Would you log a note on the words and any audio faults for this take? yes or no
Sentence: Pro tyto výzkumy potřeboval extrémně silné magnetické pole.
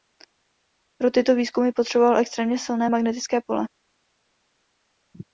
no